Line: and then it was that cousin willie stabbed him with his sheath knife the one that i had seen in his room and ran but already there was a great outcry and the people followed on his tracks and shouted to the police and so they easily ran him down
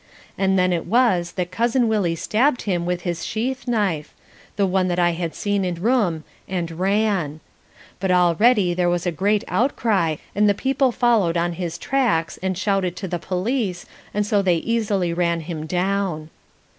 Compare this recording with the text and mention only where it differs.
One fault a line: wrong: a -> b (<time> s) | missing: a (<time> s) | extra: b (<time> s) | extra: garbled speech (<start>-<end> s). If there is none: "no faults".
missing: his (5.8 s)